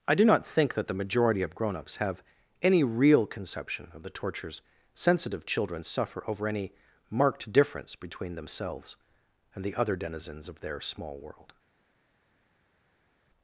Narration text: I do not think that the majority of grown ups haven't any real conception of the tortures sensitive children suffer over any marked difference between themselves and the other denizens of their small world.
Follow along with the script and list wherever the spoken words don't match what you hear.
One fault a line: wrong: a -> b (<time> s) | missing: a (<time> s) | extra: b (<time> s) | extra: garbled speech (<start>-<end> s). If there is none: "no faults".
wrong: haven't -> have (2.0 s)